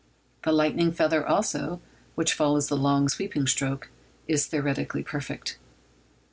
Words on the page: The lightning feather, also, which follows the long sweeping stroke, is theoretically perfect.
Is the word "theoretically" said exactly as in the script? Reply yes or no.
yes